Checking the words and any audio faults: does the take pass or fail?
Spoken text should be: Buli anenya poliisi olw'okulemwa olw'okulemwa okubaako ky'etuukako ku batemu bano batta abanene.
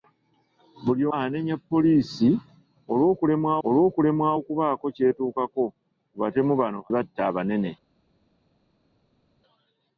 pass